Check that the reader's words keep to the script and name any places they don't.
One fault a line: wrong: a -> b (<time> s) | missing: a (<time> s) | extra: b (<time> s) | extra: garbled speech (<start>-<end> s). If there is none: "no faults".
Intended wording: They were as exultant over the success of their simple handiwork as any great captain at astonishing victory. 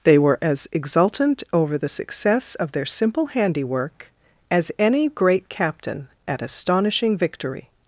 no faults